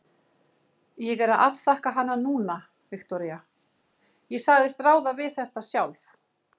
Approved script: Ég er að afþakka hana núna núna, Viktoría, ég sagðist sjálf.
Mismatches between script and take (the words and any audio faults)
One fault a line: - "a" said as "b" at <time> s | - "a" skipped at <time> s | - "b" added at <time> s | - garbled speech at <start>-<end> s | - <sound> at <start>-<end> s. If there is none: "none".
- "núna" skipped at 2.6 s
- "ráða við þetta" added at 4.9 s